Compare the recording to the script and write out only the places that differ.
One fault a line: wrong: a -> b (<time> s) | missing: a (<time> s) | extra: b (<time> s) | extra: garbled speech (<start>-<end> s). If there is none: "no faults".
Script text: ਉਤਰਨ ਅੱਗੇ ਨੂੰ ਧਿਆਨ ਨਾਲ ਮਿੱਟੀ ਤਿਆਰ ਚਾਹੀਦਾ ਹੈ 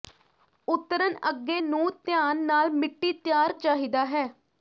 no faults